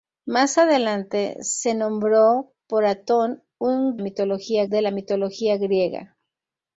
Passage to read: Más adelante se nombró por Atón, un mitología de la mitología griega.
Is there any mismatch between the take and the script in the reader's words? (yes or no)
no